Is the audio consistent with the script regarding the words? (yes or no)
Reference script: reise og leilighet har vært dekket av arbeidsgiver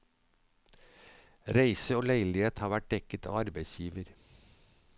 yes